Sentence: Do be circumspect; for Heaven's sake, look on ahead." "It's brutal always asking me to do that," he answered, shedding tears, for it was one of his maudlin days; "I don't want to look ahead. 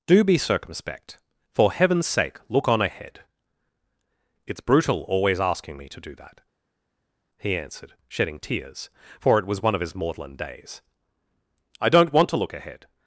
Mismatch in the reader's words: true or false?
false